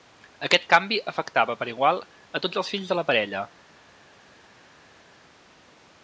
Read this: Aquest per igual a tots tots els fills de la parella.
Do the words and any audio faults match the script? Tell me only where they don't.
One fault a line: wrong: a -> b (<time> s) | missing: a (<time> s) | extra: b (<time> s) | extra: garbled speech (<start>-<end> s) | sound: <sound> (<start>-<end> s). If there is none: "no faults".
extra: canvi afectava (0.7 s)
missing: tots (2.6 s)